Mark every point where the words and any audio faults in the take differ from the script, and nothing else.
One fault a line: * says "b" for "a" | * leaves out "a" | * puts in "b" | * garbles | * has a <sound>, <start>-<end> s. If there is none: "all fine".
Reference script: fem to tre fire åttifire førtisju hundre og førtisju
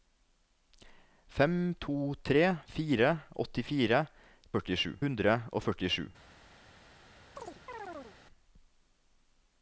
* has a chirp, 7.4-8.2 s